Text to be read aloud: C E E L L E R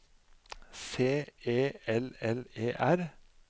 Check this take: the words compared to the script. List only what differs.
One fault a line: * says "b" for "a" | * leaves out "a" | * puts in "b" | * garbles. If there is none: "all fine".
* leaves out "E"